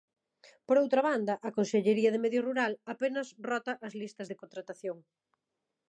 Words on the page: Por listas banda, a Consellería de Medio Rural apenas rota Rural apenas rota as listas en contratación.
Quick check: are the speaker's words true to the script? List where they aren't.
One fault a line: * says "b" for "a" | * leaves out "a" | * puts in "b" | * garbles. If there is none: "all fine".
* says "outra" for "listas"
* leaves out "Rural apenas rota"
* says "de" for "en"